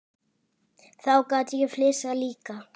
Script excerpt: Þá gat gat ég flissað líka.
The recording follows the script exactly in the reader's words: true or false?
false